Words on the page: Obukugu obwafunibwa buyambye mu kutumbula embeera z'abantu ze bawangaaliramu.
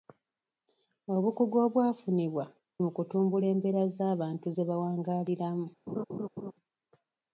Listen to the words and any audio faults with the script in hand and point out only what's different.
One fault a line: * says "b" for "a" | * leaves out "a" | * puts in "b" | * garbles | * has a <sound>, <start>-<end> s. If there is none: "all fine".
* leaves out "buyambye"
* has a laugh, 5.9-6.5 s